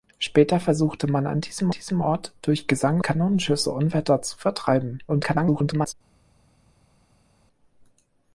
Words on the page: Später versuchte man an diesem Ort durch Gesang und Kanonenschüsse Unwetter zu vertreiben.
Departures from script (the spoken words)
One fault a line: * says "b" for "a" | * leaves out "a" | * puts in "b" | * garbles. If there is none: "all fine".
* puts in "diesem"
* leaves out "und"
* garbles